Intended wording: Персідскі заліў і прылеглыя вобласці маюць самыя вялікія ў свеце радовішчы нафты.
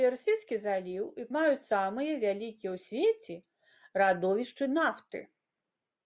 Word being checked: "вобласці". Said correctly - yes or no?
no